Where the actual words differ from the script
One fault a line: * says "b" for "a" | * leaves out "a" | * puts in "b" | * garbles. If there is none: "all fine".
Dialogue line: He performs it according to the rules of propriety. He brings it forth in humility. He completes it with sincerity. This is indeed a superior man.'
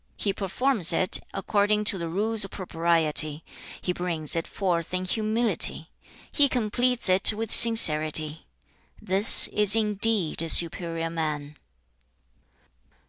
all fine